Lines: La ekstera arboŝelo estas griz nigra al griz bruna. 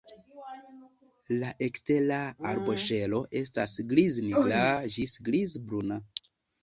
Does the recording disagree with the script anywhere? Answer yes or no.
yes